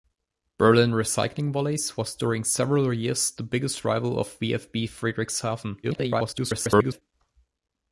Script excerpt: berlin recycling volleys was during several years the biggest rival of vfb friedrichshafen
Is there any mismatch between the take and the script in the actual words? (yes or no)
yes